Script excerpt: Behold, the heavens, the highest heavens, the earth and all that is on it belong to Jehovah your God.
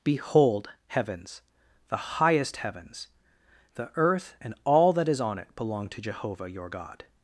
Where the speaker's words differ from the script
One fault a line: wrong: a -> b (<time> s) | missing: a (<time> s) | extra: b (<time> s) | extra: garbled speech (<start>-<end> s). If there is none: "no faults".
missing: the (0.7 s)